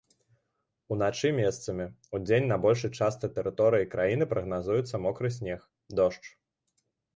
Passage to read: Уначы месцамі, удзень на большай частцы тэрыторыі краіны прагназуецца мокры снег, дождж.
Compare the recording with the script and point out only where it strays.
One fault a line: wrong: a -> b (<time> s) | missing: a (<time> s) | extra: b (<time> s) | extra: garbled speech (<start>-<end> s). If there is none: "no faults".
no faults